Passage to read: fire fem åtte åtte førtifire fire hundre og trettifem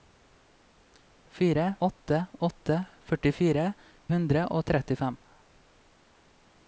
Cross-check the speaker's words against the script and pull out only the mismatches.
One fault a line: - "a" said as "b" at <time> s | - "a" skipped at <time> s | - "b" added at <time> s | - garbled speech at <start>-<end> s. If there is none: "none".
- "fem" skipped at 1.6 s
- "fire" skipped at 3.6 s